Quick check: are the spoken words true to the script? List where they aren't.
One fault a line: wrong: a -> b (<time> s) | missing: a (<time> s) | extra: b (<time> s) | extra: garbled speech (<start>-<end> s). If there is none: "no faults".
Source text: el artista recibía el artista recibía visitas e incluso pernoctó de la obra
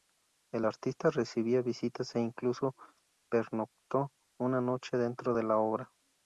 missing: el artista recibía (1.6 s)
extra: una noche dentro (4.4 s)